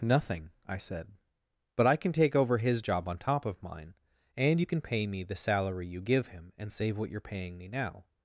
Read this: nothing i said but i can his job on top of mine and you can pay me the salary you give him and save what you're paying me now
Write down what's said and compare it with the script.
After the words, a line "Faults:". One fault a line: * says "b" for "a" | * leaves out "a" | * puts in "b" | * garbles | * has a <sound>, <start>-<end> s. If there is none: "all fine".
nothing i said but i can take over his job on top of mine and you can pay me the salary you give him and save what you're paying me now
Faults:
* puts in "take over"